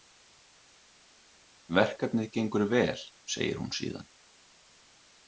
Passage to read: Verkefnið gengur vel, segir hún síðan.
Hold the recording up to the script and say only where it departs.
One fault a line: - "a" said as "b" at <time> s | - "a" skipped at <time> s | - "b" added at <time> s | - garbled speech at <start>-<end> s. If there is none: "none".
none